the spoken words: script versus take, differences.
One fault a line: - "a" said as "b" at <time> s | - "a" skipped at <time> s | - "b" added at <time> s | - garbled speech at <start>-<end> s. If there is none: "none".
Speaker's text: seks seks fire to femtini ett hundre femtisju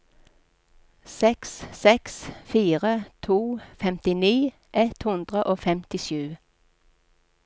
- "og" added at 5.4 s